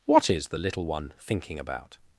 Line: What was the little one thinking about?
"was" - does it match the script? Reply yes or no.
no